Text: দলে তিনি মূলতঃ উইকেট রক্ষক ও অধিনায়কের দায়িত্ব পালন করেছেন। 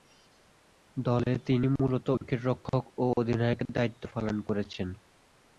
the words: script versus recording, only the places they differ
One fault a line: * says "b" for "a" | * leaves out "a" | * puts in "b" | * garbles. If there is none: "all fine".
all fine